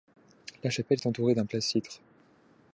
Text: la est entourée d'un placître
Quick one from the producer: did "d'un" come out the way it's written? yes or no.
yes